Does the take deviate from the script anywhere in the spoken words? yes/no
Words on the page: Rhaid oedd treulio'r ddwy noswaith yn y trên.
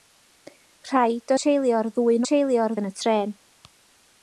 yes